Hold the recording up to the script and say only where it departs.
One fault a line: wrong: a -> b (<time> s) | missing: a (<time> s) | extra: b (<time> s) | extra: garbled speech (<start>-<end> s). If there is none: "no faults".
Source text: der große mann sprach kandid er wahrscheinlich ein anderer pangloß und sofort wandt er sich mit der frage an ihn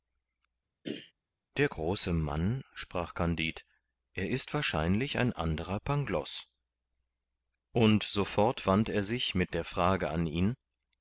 extra: ist (4.3 s)